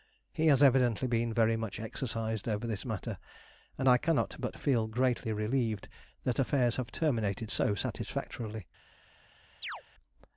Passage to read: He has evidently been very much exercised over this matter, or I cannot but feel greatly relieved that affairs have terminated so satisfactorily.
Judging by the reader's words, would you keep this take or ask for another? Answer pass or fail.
fail